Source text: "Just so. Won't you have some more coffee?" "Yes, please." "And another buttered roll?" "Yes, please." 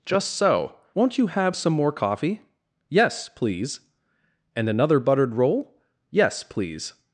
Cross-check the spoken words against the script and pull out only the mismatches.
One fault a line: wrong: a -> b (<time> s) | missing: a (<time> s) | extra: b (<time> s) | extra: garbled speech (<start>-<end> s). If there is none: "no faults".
no faults